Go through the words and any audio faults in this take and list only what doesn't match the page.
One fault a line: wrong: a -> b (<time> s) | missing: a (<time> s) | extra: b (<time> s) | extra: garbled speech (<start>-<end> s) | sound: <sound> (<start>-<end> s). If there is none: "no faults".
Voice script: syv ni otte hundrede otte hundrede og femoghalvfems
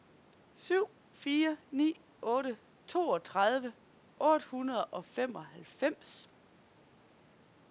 extra: fire (1.1 s)
wrong: hundrede -> toogtredive (2.9 s)